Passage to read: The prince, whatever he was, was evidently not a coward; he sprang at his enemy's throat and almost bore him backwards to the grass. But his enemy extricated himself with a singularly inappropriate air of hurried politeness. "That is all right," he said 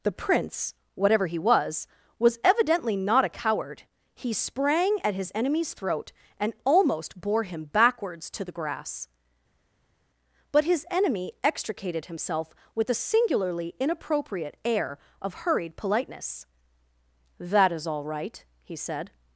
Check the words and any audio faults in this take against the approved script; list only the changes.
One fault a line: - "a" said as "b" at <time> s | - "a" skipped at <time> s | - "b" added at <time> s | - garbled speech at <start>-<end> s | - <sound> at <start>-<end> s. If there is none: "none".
none